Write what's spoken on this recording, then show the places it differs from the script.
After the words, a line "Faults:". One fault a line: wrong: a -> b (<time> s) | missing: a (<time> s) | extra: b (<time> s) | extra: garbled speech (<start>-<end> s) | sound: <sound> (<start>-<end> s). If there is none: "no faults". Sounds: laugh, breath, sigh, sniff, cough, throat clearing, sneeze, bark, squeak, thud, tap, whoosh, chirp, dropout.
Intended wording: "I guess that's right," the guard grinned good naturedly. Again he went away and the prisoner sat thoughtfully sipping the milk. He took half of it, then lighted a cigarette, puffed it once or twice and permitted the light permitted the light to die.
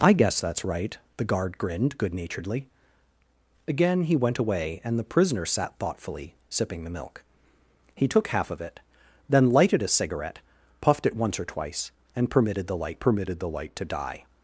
"I guess that's right," the guard grinned good naturedly. Again he went away and the prisoner sat thoughtfully sipping the milk. He took half of it, then lighted a cigarette, puffed it once or twice and permitted the light permitted the light to die.
Faults:
no faults